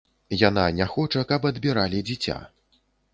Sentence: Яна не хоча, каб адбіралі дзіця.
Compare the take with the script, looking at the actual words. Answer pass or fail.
pass